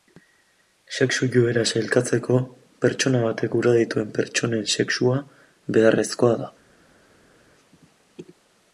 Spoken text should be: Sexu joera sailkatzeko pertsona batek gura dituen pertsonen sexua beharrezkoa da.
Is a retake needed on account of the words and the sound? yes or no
no